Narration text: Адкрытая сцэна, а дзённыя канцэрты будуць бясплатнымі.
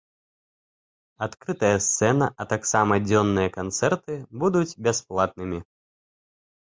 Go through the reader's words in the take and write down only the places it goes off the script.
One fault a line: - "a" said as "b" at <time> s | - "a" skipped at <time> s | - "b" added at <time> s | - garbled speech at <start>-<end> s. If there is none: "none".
- "таксама" added at 2.5 s